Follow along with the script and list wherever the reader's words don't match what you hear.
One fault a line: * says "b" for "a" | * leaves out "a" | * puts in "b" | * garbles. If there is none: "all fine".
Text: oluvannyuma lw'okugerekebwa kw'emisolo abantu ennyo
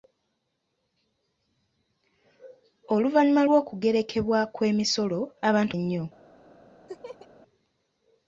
all fine